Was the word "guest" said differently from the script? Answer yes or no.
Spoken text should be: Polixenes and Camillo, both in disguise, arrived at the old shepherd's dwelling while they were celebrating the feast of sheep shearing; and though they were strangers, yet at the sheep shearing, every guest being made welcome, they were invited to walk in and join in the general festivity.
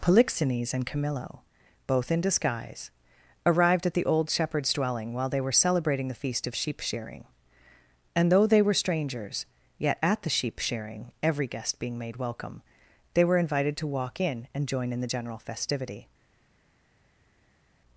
no